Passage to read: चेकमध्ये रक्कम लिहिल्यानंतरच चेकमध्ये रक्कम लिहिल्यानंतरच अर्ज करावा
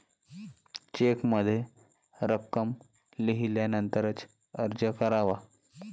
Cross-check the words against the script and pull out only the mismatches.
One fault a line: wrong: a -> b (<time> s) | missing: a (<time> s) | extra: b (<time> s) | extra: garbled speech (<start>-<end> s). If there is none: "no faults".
missing: चेकमध्ये रक्कम लिहिल्यानंतरच (4.2 s)